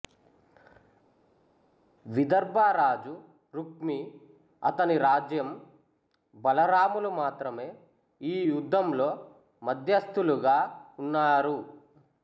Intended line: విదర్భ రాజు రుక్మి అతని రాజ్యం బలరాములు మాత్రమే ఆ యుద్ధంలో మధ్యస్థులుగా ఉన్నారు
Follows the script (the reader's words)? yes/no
no